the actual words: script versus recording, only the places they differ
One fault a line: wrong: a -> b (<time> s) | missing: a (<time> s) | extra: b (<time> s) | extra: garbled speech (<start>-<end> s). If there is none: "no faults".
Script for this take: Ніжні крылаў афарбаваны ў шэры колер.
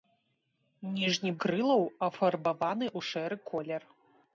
no faults